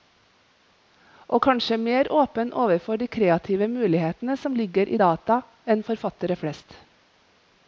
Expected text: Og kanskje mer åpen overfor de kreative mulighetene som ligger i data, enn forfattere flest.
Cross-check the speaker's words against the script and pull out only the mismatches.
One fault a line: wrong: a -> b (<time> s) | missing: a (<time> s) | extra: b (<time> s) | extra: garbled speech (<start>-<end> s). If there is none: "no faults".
no faults